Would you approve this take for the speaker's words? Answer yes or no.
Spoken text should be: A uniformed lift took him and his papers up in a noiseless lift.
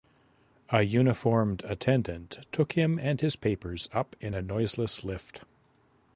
no